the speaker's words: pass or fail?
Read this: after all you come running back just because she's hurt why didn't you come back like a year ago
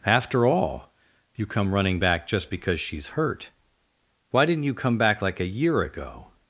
pass